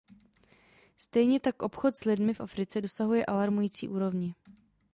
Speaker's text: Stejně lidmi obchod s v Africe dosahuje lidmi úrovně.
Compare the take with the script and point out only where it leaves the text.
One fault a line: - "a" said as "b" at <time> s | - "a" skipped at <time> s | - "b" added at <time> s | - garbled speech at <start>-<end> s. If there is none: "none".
- "lidmi" said as "tak" at 1.4 s
- "lidmi" added at 2.0 s
- "lidmi" said as "alarmující" at 3.2 s